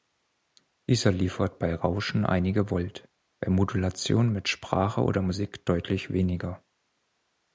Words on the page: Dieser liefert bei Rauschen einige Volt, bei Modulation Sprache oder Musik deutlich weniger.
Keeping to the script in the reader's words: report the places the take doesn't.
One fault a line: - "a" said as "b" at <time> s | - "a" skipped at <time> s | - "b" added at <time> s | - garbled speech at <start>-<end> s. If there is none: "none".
- "mit" added at 4.3 s